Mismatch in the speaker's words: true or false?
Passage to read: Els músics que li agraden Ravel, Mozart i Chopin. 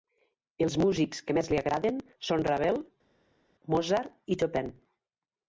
true